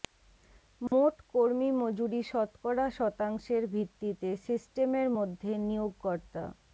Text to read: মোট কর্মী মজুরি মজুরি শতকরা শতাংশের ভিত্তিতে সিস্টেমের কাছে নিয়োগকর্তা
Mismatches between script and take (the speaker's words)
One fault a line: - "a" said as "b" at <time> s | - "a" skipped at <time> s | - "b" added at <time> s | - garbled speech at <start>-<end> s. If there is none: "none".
- "মজুরি" skipped at 2.2 s
- "কাছে" said as "মধ্যে" at 5.2 s